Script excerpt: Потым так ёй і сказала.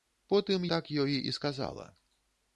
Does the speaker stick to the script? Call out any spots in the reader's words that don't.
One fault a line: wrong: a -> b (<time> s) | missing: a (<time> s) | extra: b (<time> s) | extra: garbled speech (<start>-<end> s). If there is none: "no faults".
no faults